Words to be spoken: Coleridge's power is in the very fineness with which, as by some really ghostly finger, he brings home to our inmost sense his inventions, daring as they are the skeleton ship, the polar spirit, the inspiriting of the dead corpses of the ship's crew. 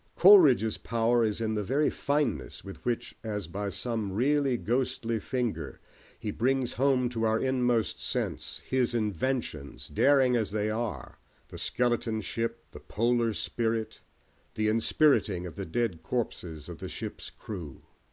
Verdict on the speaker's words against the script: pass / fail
pass